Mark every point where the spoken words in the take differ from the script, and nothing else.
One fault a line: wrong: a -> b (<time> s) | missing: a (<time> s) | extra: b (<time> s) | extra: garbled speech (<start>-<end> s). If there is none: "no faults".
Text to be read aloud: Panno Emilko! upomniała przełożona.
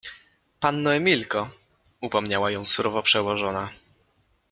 extra: ją surowo (2.5 s)